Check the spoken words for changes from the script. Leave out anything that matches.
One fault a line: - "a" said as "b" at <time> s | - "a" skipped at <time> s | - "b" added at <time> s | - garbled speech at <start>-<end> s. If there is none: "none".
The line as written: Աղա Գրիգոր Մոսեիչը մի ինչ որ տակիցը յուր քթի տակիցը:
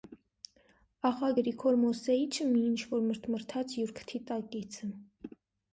- "տակիցը" said as "մրթմրթաց" at 3.1 s